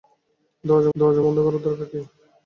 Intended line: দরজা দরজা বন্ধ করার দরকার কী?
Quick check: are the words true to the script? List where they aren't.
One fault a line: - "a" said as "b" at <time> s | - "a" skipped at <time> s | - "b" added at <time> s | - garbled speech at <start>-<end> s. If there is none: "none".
none